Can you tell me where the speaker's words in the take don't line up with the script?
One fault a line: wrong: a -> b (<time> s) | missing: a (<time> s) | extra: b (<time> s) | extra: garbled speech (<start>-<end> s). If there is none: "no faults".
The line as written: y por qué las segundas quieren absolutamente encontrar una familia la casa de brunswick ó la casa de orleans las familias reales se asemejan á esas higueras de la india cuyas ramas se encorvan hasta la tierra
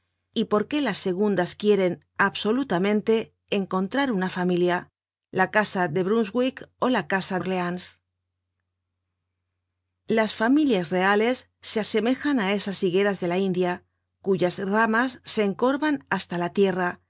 missing: de (7.4 s)